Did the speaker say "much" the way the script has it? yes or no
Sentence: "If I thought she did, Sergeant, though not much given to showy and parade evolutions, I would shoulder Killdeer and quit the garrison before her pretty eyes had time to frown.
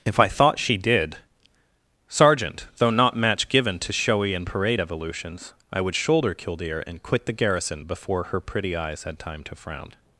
no